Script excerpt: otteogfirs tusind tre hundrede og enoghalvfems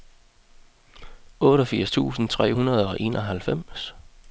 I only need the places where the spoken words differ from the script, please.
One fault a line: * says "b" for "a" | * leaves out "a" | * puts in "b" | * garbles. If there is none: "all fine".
all fine